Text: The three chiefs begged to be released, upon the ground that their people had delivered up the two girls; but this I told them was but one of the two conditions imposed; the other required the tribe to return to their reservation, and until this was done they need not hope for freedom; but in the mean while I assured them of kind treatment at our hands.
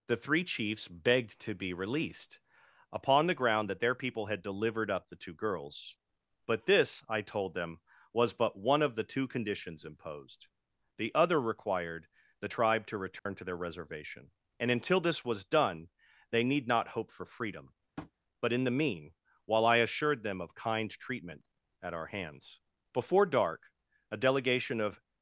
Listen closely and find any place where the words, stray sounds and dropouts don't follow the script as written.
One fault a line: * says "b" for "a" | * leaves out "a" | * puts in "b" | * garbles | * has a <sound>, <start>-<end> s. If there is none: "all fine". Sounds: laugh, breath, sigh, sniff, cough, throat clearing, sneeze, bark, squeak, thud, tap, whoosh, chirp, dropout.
* has a dropout, 13.2-13.3 s
* has a tap, 18.0-18.1 s
* puts in "Before dark a delegation of"